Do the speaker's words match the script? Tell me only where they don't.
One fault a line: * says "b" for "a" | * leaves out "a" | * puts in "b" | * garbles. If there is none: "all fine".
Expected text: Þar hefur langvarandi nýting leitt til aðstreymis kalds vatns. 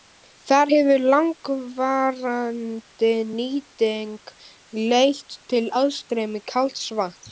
all fine